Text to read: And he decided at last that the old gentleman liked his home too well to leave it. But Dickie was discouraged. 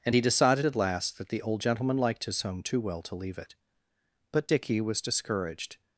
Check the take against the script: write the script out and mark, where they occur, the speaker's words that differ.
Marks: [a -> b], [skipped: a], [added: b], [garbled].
And he decided at last that the old gentleman liked his home too well to leave it. But Dickie was discouraged.